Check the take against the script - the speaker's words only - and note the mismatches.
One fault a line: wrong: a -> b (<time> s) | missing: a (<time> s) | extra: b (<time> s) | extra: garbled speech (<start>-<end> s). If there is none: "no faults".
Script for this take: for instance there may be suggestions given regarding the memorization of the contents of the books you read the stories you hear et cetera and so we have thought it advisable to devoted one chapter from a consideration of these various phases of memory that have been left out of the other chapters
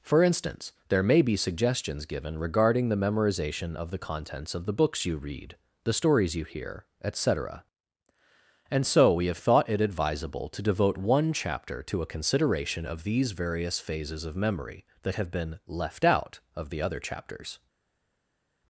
wrong: devoted -> devote (10.6 s)
wrong: from -> to (11.8 s)